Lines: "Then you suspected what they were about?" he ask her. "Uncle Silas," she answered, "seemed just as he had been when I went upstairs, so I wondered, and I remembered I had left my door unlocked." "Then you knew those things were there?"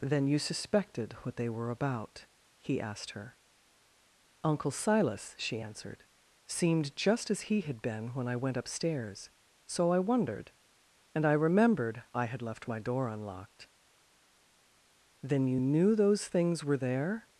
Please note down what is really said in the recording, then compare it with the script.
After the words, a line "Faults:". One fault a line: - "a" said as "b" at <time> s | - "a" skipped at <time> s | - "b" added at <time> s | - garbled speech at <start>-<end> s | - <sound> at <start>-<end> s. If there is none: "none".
"Then you suspected what they were about?" he asked her. "Uncle Silas," she answered, "seemed just as he had been when I went upstairs, so I wondered, and I remembered I had left my door unlocked." "Then you knew those things were there?"
Faults:
- "ask" said as "asked" at 2.8 s